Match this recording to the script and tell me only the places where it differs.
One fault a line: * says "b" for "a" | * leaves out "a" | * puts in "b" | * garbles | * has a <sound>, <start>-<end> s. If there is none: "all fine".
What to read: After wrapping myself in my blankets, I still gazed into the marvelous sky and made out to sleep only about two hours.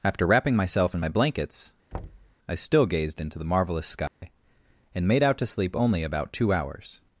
* has a thud, 1.9-2.4 s
* has a dropout, 4.1-4.2 s